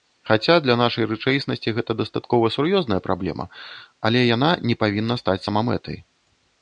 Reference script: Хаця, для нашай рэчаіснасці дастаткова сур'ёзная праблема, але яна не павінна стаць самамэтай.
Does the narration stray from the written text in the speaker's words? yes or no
yes